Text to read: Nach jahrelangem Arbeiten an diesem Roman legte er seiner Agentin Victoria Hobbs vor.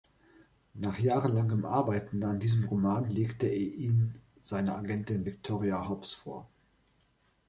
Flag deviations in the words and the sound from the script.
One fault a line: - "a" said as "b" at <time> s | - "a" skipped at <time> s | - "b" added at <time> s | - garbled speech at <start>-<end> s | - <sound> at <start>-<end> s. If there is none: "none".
- "ihn" added at 3.5 s